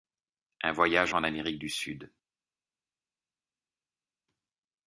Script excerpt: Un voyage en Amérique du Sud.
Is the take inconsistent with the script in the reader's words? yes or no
no